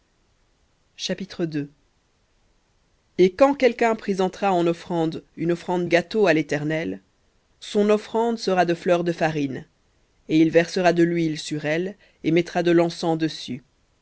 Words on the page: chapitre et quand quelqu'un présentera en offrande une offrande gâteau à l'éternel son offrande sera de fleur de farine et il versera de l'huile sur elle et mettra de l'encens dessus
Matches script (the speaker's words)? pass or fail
pass